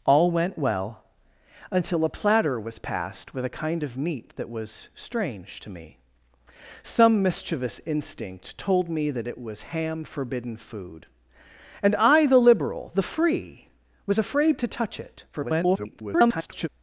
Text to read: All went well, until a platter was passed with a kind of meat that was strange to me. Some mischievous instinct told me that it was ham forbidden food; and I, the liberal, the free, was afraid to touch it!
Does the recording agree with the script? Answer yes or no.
no